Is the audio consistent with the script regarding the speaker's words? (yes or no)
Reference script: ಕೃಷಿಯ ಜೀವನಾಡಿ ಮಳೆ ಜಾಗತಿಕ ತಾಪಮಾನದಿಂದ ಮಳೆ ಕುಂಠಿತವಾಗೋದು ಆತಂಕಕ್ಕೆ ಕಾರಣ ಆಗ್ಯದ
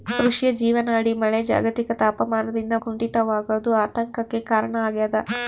no